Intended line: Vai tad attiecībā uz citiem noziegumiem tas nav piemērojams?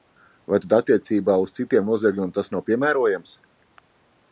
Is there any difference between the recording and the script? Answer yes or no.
no